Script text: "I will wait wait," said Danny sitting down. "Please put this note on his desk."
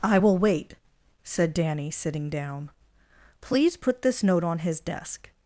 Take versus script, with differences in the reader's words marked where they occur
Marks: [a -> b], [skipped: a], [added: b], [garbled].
"I will wait [skipped: wait,"] said Danny sitting down. "Please put this note on his desk."